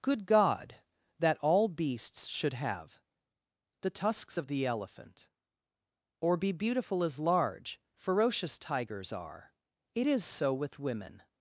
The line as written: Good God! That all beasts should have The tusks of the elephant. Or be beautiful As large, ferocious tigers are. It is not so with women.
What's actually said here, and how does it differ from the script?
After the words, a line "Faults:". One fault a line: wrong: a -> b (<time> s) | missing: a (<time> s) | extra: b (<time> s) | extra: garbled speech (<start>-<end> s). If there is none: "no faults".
Good God! That all beasts should have The tusks of the elephant. Or be beautiful As large, ferocious tigers are. It is so with women.
Faults:
missing: not (10.2 s)